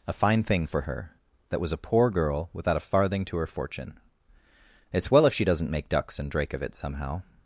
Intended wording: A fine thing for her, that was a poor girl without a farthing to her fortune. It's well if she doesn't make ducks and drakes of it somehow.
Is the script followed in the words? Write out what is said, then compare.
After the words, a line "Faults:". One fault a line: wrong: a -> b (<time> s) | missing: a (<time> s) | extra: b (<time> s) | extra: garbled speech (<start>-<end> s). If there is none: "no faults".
A fine thing for her, that was a poor girl without a farthing to her fortune. It's well if she doesn't make ducks and drake of it somehow.
Faults:
wrong: drakes -> drake (6.3 s)